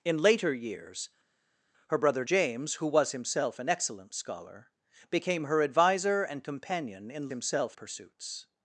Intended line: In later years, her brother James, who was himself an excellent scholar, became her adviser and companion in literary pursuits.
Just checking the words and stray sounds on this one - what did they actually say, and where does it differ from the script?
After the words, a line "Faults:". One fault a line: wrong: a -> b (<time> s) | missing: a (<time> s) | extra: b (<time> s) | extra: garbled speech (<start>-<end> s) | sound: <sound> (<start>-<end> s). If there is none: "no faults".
In later years, her brother James, who was himself an excellent scholar, became her adviser and companion in himself pursuits.
Faults:
wrong: literary -> himself (7.3 s)